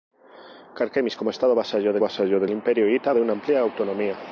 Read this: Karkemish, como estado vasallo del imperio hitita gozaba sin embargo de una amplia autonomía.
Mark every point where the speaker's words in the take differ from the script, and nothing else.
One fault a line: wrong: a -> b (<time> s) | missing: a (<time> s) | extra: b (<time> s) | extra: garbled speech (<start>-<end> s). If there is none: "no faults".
extra: vasallo del (2.0 s)
missing: gozaba sin embargo (3.1 s)